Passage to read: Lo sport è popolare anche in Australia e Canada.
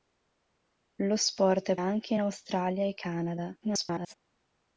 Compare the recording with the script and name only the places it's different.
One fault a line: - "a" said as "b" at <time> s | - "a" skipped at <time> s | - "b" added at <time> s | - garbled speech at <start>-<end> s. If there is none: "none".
- "popolare" skipped at 1.8 s
- garbled speech at 3.6-4.1 s